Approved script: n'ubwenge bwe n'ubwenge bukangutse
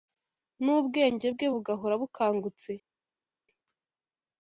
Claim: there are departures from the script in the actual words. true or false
true